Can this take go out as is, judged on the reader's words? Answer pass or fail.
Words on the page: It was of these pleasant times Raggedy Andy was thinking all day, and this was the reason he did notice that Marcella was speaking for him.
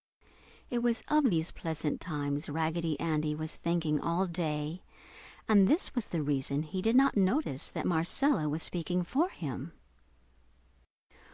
fail